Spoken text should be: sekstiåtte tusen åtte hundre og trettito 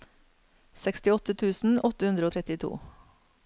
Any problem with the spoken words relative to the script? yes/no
no